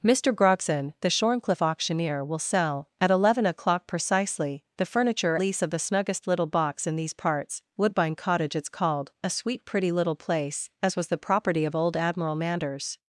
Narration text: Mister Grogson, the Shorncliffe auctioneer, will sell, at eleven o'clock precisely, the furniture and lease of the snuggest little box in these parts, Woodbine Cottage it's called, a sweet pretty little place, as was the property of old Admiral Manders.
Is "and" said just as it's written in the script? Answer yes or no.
no